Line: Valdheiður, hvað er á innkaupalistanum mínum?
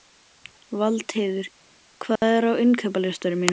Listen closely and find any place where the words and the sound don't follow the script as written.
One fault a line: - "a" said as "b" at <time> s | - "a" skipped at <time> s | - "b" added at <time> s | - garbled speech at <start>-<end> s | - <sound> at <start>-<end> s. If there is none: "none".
- dropout at 2.2-2.2 s